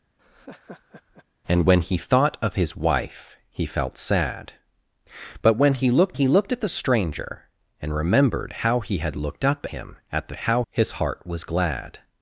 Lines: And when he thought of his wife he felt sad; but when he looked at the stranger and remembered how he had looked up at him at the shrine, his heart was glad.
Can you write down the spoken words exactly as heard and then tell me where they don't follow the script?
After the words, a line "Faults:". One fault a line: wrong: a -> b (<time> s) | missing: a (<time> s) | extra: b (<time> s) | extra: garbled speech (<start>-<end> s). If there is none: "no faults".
And when he thought of his wife he felt sad; but when he looked he looked at the stranger and remembered how he had looked up him at the how, his heart was glad.
Faults:
extra: he looked (6.1 s)
missing: at (9.7 s)
wrong: shrine -> how (10.3 s)